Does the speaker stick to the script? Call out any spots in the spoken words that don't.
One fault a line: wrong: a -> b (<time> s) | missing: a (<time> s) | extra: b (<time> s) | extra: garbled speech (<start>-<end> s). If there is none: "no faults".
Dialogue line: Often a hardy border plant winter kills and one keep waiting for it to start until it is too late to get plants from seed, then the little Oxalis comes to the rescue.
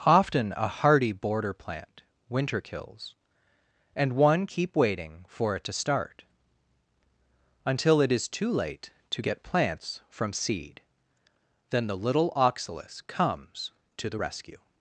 no faults